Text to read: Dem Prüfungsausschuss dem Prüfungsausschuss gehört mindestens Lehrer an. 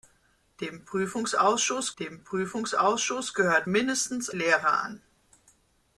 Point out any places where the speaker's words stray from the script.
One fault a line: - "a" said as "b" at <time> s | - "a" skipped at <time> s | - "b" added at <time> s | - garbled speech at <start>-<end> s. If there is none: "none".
none